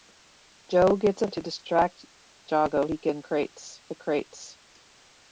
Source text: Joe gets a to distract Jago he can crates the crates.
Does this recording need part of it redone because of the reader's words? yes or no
no